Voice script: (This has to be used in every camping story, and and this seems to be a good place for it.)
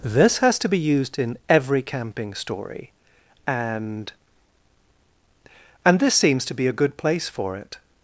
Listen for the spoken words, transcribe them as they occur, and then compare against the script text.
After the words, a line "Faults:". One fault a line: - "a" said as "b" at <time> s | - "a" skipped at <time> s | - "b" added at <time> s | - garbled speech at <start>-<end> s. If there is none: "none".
(This has to be used in every camping story, and and this seems to be a good place for it.)
Faults:
none